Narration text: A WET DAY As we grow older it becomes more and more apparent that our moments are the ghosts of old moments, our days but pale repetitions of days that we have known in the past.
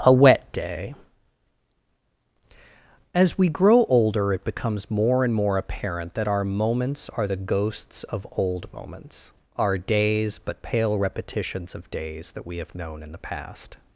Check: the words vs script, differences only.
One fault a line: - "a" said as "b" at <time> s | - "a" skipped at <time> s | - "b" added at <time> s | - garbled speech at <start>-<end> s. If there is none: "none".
none